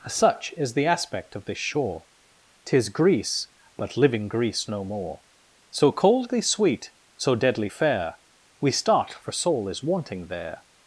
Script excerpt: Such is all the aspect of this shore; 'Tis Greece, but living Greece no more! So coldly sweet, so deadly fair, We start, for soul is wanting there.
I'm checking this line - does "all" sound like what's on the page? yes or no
no